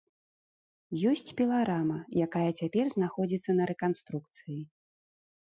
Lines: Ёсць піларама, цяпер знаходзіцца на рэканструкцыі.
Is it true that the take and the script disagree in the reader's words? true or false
true